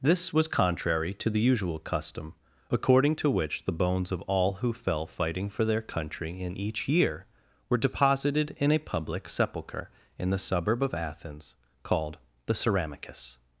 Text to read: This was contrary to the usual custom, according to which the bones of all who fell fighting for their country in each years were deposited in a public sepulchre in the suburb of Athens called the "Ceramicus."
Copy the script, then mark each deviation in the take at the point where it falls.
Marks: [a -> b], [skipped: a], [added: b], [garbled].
This was contrary to the usual custom, according to which the bones of all who fell fighting for their country in each [years -> year] were deposited in a public sepulchre in the suburb of Athens called the "Ceramicus."